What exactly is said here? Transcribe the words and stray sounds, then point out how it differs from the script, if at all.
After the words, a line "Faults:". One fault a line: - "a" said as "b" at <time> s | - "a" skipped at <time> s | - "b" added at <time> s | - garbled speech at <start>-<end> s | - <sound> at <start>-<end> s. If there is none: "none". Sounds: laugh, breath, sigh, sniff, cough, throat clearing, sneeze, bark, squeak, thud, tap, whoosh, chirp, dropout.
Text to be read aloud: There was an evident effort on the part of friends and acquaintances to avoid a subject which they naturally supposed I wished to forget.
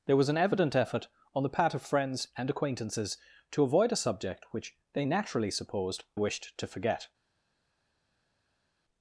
There was an evident effort on the part of friends and acquaintances to avoid a subject which they naturally supposed wished to forget.
Faults:
- "I" skipped at 6.0 s